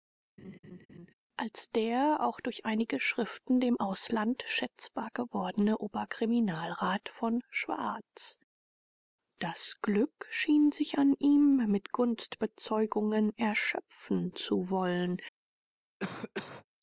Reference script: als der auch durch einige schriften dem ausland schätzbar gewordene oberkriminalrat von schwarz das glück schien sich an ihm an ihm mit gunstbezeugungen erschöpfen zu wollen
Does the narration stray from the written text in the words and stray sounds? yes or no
yes